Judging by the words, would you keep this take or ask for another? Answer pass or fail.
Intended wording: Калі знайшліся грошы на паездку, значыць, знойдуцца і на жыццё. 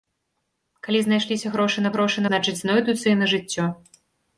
fail